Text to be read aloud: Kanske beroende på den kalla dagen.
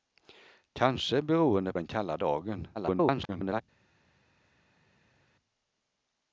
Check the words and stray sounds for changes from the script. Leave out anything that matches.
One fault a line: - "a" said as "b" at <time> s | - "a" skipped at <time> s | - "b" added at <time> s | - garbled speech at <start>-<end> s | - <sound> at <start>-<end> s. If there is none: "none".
- "på" skipped at 1.7 s
- garbled speech at 2.7-3.6 s